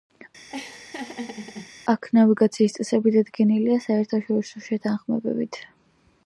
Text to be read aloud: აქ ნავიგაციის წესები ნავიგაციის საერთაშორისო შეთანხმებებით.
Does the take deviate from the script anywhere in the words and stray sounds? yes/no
yes